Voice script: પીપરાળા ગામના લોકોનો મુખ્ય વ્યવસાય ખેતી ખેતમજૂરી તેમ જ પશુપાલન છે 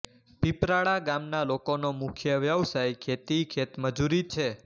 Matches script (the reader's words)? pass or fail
fail